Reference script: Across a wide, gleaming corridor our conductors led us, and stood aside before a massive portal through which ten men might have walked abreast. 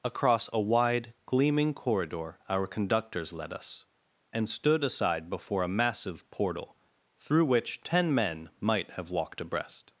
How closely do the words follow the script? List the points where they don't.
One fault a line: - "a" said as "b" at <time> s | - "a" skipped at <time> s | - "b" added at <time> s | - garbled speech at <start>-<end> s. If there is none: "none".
none